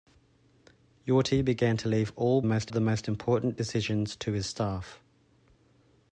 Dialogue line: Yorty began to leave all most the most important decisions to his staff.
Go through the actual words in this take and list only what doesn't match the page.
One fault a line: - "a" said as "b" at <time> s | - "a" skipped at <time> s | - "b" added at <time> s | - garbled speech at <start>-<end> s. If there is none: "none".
none